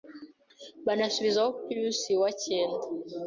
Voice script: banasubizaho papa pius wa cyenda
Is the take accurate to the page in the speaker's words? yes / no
no